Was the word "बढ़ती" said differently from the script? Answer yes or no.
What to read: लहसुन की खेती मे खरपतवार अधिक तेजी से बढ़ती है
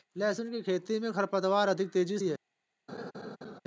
yes